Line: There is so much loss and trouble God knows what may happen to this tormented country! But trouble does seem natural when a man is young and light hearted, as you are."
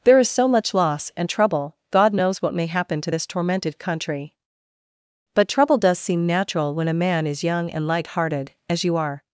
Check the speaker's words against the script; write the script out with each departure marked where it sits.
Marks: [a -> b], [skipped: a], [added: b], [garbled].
There is so much loss and trouble God knows what may happen to this tormented country! But trouble does seem natural when a man is young and light hearted, as you are."